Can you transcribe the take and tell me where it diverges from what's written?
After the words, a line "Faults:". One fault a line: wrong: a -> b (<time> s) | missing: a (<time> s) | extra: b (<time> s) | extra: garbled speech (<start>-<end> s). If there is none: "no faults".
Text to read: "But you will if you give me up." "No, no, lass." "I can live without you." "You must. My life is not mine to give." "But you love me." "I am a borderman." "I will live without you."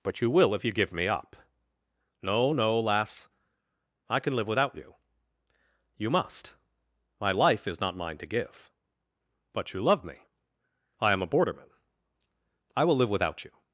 "But you will if you give me up." "No, no, lass." "I can live without you." "You must. My life is not mine to give." "But you love me." "I am a borderman." "I will live without you."
Faults:
no faults